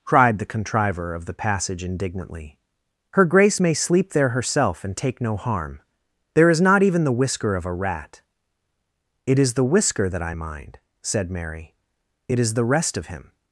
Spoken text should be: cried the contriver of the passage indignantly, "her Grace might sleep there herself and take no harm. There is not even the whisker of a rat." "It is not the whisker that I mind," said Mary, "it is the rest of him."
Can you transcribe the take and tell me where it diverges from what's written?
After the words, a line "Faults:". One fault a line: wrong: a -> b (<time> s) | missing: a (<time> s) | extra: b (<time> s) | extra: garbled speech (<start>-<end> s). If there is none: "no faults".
cried the contriver of the passage indignantly, "her Grace may sleep there herself and take no harm. There is not even the whisker of a rat." "It is the whisker that I mind," said Mary, "it is the rest of him."
Faults:
wrong: might -> may (3.6 s)
missing: not (9.5 s)